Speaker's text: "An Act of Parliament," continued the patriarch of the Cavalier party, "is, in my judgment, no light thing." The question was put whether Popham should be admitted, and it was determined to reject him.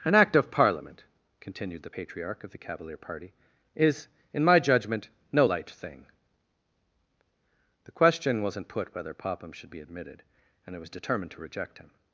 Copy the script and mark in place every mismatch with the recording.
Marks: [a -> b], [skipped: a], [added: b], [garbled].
"An Act of Parliament," continued the patriarch of the Cavalier party, "is, in my judgment, no light thing." The question [was -> wasn't] put whether Popham should be admitted, and it was determined to reject him.